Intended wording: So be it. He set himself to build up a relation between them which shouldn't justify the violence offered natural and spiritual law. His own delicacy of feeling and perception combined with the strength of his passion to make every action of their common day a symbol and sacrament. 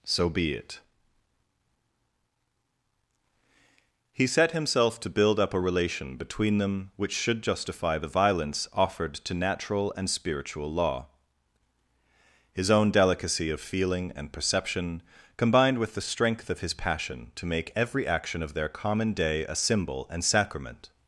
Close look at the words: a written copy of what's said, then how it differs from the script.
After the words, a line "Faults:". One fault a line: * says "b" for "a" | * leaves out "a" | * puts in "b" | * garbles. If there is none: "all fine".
So be it. He set himself to build up a relation between them which should justify the violence offered to natural and spiritual law. His own delicacy of feeling and perception combined with the strength of his passion to make every action of their common day a symbol and sacrament.
Faults:
* says "should" for "shouldn't"
* puts in "to"